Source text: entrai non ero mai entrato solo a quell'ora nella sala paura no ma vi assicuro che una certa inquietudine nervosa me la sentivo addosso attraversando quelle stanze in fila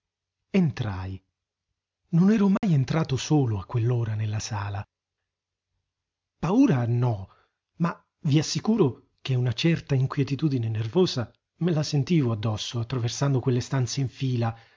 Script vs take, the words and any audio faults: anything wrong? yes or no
yes